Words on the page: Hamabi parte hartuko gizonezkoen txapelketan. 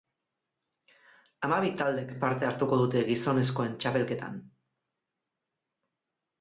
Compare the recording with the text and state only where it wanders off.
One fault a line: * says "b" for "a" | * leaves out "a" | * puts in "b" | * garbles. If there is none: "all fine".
* puts in "taldek"
* puts in "dute"